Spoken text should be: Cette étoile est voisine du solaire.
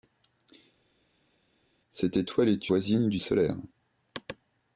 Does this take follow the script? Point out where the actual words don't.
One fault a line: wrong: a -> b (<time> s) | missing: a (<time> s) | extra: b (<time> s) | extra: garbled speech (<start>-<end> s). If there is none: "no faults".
no faults